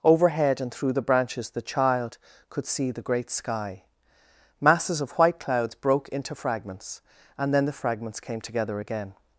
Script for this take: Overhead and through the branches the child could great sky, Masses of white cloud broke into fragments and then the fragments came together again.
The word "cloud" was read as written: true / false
false